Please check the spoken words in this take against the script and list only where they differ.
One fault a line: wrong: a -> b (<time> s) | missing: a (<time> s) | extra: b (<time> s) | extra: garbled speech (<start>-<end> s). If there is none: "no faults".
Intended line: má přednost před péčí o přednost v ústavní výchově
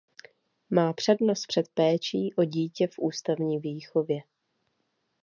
wrong: přednost -> dítě (2.4 s)